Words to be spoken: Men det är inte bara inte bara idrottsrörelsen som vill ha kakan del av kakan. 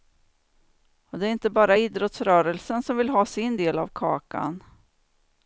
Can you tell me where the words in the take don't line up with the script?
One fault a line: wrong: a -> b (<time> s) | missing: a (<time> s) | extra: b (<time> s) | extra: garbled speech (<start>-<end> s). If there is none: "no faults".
wrong: Men -> Och (1.1 s)
missing: inte bara (1.8 s)
wrong: kakan -> sin (3.3 s)